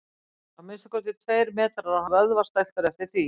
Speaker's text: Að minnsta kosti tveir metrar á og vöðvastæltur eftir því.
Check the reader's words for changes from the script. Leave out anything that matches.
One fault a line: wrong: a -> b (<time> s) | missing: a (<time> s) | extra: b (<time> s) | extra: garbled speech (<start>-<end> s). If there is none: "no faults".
no faults